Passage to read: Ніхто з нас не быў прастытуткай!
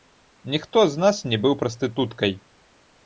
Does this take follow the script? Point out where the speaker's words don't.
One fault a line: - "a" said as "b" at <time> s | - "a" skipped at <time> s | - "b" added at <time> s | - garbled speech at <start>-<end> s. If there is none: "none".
none